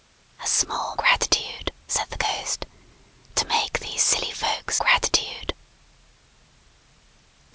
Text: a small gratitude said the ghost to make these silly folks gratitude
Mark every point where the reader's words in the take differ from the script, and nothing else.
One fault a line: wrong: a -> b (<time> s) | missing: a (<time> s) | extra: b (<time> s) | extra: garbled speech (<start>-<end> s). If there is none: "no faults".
no faults